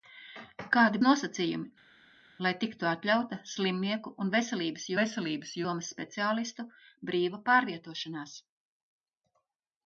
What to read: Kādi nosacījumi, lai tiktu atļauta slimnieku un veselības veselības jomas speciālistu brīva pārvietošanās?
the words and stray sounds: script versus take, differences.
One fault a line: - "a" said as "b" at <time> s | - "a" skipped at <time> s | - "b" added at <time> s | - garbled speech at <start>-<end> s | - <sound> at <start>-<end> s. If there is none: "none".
none